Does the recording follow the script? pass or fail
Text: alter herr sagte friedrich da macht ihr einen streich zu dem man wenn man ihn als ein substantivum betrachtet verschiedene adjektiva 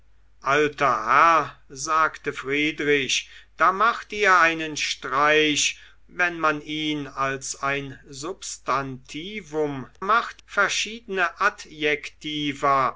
fail